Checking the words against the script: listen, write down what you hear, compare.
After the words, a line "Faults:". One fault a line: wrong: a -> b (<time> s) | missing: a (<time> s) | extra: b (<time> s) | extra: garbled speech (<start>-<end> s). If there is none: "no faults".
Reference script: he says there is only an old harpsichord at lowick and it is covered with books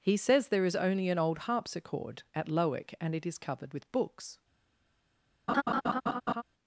he says there is only an old harpsichord at lowick and it is covered with books
Faults:
no faults